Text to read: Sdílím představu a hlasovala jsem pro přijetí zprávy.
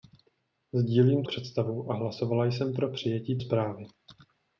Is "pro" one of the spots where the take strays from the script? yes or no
no